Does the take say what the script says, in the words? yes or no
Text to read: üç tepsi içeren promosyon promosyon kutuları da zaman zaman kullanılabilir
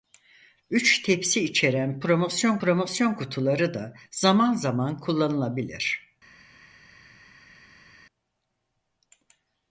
yes